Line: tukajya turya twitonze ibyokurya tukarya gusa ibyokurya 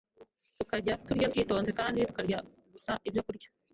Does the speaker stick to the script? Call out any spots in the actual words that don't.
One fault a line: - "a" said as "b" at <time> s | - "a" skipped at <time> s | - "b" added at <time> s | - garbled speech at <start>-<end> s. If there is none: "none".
- "ibyokurya" said as "kandi" at 1.8 s